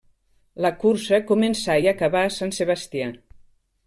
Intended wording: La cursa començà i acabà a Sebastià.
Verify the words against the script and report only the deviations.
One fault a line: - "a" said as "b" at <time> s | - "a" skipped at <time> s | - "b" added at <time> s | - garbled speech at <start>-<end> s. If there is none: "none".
- "Sant" added at 2.4 s